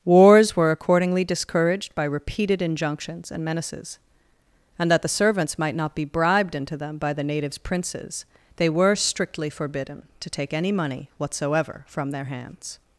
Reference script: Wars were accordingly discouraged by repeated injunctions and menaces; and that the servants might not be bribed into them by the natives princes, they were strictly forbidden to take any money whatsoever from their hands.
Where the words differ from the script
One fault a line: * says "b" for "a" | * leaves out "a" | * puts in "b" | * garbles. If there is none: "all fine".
all fine